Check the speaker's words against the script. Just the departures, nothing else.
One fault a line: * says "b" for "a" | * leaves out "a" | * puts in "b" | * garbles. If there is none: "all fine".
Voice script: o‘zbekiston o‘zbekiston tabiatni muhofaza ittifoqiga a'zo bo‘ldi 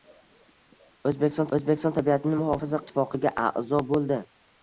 all fine